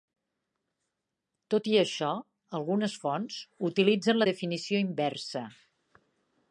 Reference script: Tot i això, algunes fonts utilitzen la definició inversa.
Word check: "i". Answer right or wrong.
right